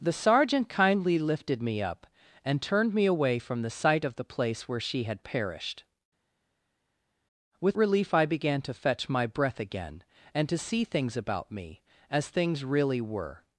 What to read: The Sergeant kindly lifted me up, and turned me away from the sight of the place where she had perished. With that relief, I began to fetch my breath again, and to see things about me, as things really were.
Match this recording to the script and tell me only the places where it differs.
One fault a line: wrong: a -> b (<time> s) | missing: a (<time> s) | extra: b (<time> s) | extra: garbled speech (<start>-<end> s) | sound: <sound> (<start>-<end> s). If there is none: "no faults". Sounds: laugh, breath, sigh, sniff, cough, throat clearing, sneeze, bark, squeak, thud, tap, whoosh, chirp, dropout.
missing: that (7.8 s)